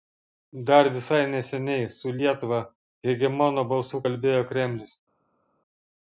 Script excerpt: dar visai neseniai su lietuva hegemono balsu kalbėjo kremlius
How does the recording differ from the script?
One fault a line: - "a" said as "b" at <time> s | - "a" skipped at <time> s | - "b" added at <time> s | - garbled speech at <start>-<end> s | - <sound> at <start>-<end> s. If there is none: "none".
none